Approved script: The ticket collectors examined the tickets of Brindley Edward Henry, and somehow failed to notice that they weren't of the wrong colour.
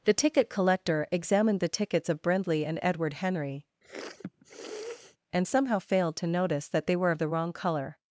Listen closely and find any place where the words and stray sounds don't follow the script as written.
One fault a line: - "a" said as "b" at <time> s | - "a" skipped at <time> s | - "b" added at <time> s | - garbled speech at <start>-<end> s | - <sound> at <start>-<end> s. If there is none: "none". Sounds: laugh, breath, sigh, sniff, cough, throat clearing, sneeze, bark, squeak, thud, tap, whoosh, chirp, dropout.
- "collectors" said as "collector" at 0.5 s
- "and" added at 2.6 s
- sniff at 3.8-5.2 s
- "weren't" said as "were" at 7.0 s